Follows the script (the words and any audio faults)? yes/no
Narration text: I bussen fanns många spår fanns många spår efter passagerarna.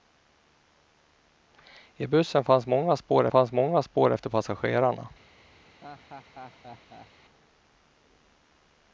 no